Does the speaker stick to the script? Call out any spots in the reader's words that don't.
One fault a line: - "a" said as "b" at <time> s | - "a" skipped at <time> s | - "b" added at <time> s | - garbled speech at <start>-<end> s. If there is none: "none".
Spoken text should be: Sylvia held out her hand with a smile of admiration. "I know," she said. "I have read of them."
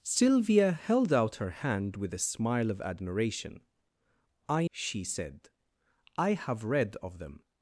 - "know" skipped at 4.7 s